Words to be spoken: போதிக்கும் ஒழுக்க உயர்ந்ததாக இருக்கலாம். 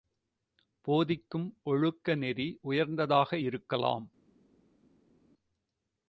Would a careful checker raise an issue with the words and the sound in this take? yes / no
yes